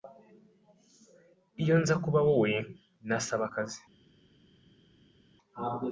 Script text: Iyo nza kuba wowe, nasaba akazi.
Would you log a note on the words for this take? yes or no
no